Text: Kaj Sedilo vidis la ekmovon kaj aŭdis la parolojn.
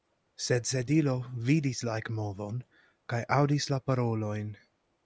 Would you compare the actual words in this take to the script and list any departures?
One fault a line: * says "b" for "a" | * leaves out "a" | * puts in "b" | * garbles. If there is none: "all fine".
* says "Sed" for "Kaj"